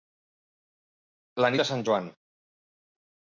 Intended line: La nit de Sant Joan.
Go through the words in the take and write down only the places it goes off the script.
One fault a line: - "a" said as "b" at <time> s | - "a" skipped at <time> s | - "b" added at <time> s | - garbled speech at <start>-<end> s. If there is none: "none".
- "nit" skipped at 1.5 s